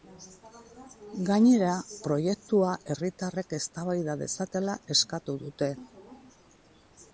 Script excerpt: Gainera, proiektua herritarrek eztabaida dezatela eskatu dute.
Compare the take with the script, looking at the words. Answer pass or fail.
pass